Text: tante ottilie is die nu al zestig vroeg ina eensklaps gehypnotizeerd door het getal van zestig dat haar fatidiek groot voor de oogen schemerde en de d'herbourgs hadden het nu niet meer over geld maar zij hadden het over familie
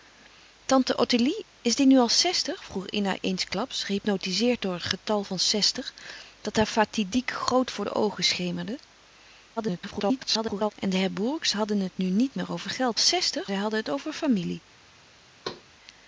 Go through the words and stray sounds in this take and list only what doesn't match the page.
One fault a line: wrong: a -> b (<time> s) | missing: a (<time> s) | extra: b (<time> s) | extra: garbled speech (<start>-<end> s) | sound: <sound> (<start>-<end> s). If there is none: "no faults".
extra: garbled speech (9.6-10.7 s)
wrong: maar -> zestig (13.0 s)
sound: thud (15.4-15.6 s)